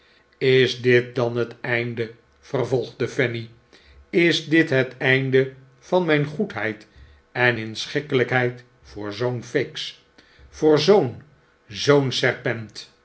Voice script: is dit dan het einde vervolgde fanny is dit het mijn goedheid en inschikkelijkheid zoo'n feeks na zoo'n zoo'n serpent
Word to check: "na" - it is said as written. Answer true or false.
false